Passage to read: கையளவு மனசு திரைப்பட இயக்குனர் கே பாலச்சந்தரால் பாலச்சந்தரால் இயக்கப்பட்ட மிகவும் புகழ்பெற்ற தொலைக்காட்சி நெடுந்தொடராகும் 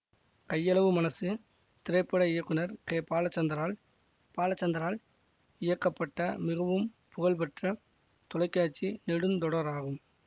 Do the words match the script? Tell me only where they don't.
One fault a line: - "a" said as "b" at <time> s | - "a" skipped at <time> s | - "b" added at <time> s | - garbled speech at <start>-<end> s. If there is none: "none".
none